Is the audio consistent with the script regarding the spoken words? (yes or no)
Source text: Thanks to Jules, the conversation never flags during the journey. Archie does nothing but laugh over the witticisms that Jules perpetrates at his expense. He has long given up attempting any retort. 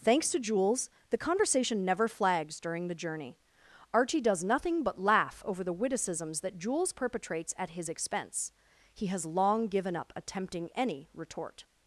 yes